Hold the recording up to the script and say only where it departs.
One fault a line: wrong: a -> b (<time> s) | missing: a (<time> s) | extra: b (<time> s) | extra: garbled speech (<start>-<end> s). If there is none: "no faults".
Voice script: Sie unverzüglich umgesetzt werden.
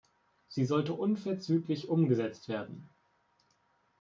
extra: sollte (0.7 s)